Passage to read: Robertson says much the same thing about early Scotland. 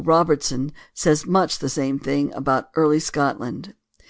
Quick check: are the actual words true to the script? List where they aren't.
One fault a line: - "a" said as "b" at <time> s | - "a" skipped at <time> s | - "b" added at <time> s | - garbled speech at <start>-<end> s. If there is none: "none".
none